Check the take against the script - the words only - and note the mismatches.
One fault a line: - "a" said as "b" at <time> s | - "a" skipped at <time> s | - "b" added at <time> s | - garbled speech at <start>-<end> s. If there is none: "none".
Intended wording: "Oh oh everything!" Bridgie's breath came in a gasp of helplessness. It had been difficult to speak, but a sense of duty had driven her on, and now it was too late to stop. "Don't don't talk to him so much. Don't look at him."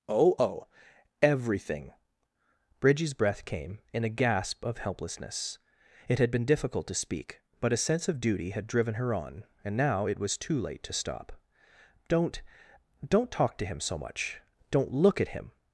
none